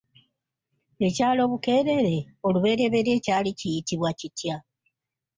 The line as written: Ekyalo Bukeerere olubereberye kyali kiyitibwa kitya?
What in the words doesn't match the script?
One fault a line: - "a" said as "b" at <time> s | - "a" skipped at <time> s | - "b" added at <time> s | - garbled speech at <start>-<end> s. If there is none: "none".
none